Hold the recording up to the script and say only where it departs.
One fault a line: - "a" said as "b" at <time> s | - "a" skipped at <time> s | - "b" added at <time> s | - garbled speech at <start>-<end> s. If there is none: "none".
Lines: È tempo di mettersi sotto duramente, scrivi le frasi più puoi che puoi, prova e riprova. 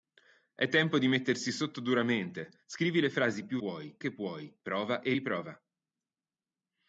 none